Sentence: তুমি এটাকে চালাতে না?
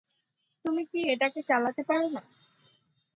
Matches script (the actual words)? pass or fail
fail